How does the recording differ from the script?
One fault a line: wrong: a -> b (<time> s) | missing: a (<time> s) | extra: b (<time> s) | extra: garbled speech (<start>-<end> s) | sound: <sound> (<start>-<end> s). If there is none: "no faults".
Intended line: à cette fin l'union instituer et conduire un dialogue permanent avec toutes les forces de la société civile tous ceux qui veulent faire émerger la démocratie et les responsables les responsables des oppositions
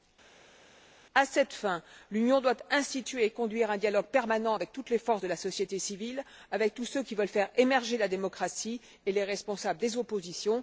extra: doit (2.4 s)
extra: avec (6.5 s)
missing: les responsables (9.8 s)